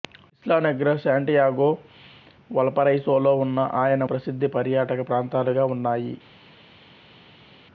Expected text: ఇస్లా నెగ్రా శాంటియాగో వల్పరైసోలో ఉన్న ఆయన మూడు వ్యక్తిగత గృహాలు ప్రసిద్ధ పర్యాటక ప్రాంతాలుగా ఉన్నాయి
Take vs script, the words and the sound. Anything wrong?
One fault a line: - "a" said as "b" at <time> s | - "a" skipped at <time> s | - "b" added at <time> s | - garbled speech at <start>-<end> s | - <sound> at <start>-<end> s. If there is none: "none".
- "మూడు వ్యక్తిగత గృహాలు" skipped at 4.0 s